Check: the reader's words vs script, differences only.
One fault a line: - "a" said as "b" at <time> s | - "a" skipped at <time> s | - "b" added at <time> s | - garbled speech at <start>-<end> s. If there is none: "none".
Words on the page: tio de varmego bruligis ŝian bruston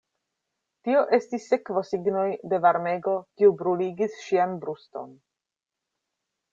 - "estis sekvosignoj" added at 1.2 s
- "kiu" added at 3.4 s